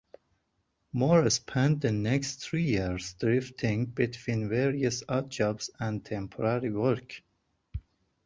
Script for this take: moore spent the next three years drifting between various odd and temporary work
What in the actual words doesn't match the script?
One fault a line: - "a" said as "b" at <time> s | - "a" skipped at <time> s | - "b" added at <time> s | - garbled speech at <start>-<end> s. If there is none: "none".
- "jobs" added at 5.3 s